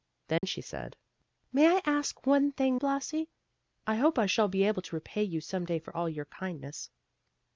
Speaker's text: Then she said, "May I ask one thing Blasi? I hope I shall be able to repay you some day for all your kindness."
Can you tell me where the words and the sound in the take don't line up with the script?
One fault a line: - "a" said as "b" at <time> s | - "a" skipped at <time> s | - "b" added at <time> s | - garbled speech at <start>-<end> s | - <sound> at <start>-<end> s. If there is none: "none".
- dropout at 0.4-0.4 s